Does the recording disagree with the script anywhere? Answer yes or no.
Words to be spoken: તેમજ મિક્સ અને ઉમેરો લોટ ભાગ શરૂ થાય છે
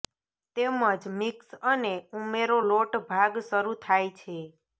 no